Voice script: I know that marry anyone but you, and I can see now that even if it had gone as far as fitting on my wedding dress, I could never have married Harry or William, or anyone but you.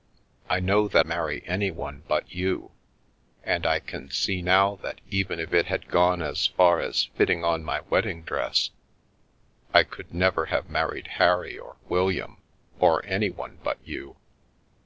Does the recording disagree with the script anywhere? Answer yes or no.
no